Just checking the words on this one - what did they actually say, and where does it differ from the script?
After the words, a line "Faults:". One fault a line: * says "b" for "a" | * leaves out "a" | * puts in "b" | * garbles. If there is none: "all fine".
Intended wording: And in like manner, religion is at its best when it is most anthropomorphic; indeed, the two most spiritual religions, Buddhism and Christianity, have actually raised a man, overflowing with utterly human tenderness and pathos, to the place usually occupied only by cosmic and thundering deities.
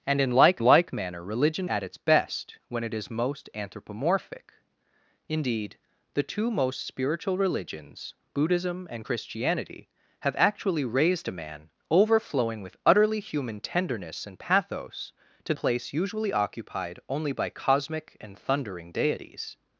And in like like manner, religion at its best when it is most anthropomorphic; indeed, the two most spiritual religions, Buddhism and Christianity, have actually raised a man, overflowing with utterly human tenderness and pathos, to place usually occupied only by cosmic and thundering deities.
Faults:
* puts in "like"
* leaves out "is"
* leaves out "the"